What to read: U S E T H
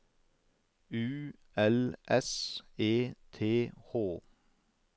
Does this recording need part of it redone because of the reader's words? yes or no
yes